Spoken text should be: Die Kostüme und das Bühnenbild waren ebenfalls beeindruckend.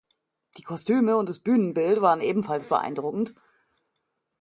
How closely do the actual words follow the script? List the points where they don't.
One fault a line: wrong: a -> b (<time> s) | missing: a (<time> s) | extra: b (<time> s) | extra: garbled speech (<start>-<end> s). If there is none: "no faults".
no faults